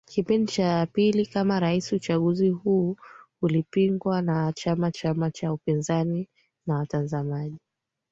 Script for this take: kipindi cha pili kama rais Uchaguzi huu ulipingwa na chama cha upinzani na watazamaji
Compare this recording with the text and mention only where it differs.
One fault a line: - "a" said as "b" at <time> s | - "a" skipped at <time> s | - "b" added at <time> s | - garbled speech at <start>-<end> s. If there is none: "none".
- "chama" added at 4.9 s